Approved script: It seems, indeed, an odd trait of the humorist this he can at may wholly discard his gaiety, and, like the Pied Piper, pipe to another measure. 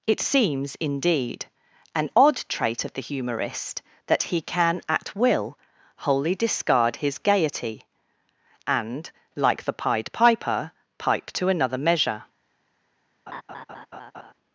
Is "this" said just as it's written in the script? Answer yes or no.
no